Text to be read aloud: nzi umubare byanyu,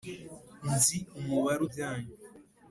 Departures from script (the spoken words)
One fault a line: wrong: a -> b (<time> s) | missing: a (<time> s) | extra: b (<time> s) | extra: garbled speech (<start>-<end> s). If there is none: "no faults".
no faults